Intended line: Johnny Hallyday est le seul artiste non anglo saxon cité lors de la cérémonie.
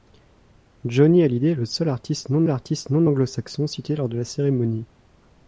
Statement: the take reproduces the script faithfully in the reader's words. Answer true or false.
false